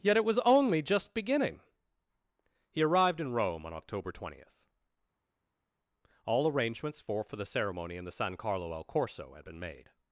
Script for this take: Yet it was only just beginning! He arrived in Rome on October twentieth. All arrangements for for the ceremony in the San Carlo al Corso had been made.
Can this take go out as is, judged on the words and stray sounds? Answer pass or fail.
pass